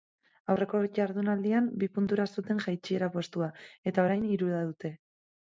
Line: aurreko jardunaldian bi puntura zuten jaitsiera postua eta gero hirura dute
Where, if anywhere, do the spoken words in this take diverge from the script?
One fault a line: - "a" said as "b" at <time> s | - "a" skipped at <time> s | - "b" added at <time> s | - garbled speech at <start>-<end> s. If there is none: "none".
- "gero" said as "orain" at 4.1 s